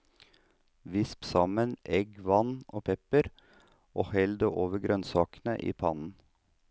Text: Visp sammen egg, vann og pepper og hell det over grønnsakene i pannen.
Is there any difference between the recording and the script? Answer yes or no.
no